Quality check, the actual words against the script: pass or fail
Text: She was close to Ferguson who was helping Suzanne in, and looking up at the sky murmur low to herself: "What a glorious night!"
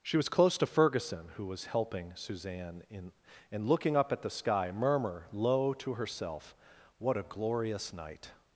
pass